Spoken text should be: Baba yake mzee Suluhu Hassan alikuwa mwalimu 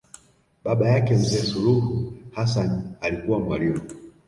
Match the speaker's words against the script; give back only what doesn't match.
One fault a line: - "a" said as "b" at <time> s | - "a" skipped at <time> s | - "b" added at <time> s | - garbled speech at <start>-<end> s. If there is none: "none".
none